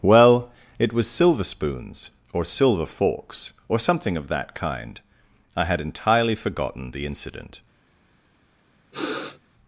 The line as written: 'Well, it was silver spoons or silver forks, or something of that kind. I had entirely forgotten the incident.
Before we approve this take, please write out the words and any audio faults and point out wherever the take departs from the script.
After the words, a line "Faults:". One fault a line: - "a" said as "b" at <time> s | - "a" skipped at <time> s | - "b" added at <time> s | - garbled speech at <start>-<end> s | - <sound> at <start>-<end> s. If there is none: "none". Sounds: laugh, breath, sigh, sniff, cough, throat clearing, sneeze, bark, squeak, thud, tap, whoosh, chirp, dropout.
'Well, it was silver spoons or silver forks, or something of that kind. I had entirely forgotten the incident.
Faults:
- sniff at 8.9-9.4 s